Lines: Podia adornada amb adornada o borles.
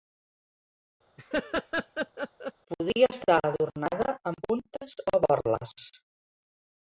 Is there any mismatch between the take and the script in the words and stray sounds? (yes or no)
yes